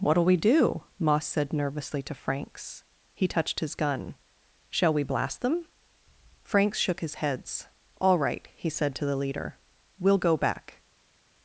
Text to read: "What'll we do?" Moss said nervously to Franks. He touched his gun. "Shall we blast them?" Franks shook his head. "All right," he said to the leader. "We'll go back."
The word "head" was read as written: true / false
false